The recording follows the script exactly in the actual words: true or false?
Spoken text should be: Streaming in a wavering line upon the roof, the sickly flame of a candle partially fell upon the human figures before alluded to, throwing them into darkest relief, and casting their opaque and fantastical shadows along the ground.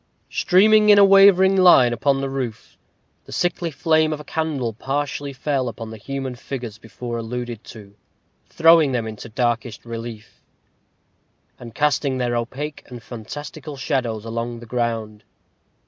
true